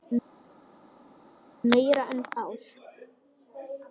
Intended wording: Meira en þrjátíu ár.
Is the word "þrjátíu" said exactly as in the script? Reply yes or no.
no